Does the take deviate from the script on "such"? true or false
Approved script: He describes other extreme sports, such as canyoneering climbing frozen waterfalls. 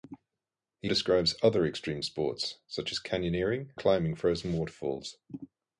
false